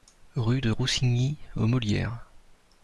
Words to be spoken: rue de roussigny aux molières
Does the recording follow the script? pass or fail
pass